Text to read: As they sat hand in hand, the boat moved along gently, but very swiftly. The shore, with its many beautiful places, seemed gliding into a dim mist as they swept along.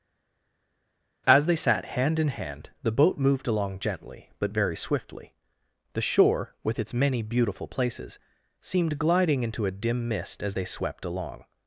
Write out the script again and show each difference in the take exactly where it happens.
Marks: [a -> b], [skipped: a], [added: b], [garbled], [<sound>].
As they sat hand in hand, the boat moved along gently, but very swiftly. The shore, with its many beautiful places, seemed gliding into a dim mist as they swept along.